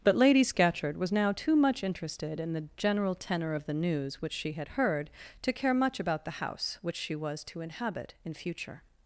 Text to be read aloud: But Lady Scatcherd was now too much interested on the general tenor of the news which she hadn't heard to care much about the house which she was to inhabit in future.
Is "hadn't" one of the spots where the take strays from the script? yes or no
yes